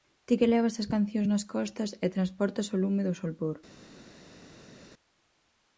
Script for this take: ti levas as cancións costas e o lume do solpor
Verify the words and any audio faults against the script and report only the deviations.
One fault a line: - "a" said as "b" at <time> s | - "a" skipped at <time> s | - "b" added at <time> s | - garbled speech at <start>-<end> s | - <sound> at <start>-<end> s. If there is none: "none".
- "que" added at 0.4 s
- "nas" added at 1.3 s
- "transportas" added at 2.2 s